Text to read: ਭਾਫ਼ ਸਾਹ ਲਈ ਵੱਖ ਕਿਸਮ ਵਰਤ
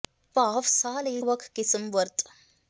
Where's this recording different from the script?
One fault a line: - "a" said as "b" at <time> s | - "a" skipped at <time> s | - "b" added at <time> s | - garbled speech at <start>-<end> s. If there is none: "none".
none